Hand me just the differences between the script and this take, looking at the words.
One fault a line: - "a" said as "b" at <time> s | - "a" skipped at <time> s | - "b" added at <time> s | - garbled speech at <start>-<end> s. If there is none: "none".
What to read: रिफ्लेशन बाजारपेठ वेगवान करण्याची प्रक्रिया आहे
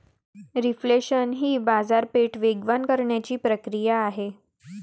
- "ही" added at 1.3 s